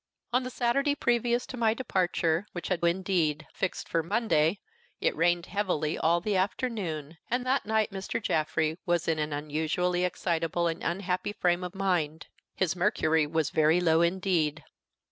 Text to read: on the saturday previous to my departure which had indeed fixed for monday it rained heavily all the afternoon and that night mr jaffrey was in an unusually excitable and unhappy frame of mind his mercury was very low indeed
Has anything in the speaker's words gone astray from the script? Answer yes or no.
no